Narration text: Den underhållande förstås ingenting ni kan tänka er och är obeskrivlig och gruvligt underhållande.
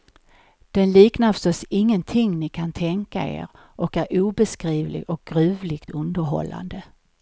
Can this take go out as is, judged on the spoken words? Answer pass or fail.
fail